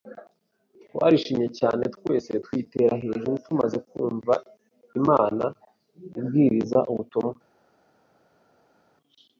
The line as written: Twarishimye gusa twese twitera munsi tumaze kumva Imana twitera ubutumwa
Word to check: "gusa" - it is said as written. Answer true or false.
false